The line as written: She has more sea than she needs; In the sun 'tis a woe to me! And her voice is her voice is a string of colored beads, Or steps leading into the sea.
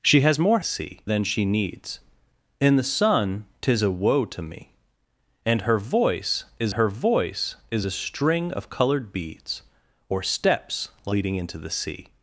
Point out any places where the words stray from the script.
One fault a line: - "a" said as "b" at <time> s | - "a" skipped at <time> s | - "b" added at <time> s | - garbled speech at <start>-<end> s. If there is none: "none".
none